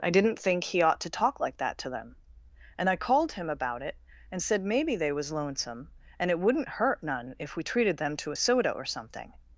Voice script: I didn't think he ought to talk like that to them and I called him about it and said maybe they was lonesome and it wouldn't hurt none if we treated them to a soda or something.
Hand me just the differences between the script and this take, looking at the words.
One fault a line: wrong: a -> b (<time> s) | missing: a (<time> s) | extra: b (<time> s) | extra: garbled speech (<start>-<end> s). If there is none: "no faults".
no faults